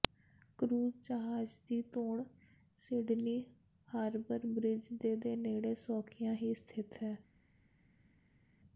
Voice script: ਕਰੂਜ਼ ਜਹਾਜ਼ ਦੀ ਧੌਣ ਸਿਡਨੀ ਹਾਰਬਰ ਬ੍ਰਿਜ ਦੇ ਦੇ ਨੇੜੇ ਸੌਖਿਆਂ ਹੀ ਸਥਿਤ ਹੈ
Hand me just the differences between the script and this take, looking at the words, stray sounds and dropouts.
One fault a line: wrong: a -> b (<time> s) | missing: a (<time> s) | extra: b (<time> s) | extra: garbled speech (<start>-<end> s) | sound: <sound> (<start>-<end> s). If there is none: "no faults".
no faults